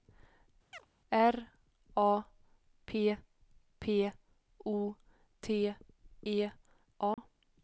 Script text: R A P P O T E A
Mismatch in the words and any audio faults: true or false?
true